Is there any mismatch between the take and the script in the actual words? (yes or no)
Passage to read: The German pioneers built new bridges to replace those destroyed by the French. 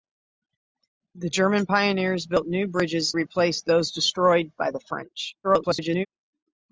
yes